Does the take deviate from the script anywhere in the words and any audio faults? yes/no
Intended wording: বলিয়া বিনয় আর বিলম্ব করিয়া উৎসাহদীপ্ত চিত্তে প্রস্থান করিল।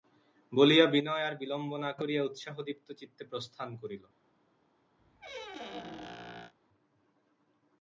yes